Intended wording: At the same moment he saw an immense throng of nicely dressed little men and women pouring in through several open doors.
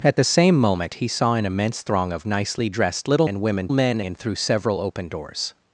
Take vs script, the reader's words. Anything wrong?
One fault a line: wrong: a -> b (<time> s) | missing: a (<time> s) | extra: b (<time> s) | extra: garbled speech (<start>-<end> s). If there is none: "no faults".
missing: men (3.3 s)
wrong: pouring -> men (3.7 s)